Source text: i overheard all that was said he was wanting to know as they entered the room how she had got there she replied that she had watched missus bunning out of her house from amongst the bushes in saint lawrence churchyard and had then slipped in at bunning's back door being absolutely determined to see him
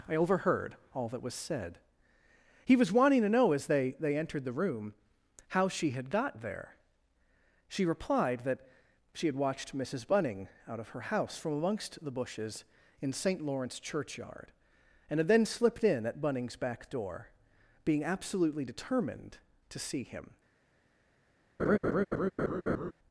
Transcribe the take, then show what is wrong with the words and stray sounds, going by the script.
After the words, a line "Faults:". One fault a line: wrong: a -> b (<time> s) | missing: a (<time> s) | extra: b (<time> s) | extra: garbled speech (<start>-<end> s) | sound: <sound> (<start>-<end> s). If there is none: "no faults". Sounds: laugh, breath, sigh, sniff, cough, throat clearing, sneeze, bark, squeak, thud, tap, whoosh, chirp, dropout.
i overheard all that was said he was wanting to know as they they entered the room how she had got there she replied that she had watched missus bunning out of her house from amongst the bushes in saint lawrence churchyard and had then slipped in at bunning's back door being absolutely determined to see him
Faults:
extra: they (4.0 s)
sound: laugh (21.6-22.9 s)